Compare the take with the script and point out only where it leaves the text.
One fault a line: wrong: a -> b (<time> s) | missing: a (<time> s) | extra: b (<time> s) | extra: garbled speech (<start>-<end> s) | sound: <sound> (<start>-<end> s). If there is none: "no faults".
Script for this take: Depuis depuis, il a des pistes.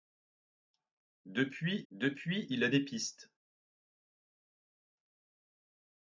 no faults